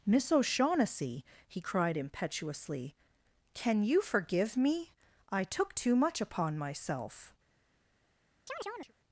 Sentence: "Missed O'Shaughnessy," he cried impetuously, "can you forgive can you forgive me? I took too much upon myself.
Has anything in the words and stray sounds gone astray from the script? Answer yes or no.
yes